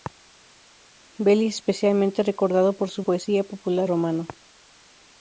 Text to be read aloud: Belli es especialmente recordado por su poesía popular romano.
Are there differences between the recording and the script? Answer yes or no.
no